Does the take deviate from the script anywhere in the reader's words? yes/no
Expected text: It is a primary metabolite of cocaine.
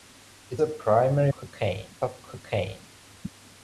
yes